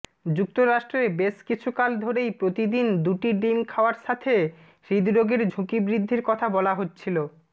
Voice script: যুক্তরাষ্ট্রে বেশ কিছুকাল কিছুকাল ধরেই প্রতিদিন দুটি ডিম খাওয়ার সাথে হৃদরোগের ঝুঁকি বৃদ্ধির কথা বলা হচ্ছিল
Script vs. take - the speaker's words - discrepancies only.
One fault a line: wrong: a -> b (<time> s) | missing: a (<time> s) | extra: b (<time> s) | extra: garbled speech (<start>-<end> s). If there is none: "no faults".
missing: কিছুকাল (1.9 s)